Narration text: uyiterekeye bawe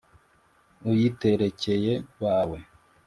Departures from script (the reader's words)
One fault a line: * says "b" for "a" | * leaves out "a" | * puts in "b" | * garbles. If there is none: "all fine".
all fine